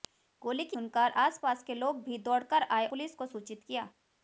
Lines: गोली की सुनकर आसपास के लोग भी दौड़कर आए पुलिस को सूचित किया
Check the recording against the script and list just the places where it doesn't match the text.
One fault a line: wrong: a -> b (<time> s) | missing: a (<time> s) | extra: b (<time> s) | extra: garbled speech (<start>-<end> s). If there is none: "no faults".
no faults